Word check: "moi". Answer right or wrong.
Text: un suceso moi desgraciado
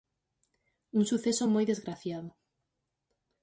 right